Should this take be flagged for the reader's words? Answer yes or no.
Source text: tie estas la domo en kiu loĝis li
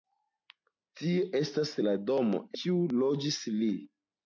yes